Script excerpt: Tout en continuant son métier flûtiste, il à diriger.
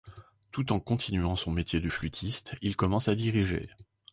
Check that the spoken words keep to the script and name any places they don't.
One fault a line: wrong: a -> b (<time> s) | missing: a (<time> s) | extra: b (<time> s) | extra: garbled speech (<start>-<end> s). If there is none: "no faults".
extra: de (1.8 s)
extra: commence (2.8 s)